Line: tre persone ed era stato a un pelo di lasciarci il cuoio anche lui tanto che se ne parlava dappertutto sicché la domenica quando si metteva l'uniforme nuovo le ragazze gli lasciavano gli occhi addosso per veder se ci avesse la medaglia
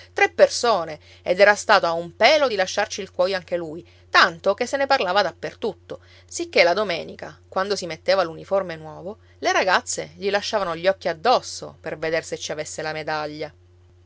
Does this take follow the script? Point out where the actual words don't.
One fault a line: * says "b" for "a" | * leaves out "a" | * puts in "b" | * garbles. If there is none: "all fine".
all fine